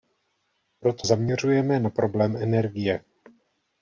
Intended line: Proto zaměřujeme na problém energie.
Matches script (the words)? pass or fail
pass